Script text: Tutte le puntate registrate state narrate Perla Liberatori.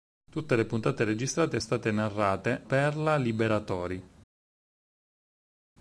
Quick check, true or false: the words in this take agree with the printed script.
true